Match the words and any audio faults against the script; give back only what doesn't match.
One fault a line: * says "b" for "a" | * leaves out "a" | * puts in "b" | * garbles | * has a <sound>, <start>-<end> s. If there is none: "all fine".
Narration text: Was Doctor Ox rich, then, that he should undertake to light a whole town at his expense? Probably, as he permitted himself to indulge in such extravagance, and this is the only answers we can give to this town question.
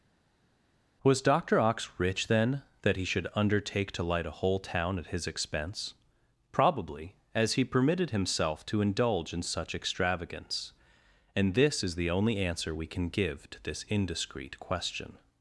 * says "answer" for "answers"
* says "indiscreet" for "town"